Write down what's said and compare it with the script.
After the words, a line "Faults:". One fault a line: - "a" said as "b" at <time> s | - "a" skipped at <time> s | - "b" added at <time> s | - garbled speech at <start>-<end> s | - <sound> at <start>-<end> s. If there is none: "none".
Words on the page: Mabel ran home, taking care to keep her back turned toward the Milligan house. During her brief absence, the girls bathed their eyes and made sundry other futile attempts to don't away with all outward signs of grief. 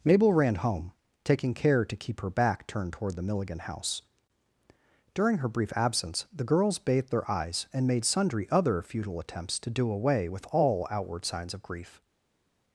Mabel ran home, taking care to keep her back turned toward the Milligan house. During her brief absence, the girls bathed their eyes and made sundry other futile attempts to do away with all outward signs of grief.
Faults:
- "don't" said as "do" at 9.7 s